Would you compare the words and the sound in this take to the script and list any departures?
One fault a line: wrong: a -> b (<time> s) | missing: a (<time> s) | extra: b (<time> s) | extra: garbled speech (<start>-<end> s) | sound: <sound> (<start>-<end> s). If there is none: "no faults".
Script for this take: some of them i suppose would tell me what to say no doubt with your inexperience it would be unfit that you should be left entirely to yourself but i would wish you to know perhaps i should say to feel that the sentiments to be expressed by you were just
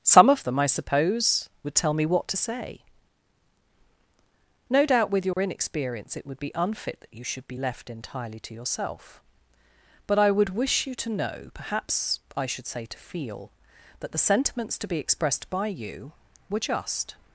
sound: dropout (5.3-5.4 s)